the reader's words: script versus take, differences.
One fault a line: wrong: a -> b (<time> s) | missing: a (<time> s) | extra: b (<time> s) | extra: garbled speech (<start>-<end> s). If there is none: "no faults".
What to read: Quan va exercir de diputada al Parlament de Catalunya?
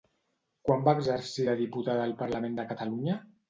no faults